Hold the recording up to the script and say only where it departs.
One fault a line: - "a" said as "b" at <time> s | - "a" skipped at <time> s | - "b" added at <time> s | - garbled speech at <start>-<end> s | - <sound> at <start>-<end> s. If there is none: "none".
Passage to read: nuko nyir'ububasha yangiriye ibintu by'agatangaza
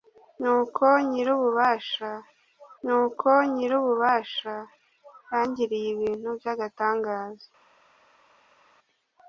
- "nuko nyir'ububasha" added at 2.8 s